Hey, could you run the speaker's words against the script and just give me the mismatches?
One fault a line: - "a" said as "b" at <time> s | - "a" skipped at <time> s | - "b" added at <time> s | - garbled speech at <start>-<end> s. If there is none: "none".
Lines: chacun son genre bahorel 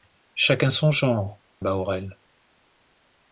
none